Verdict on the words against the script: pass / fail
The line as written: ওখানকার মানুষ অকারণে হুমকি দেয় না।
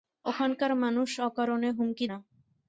fail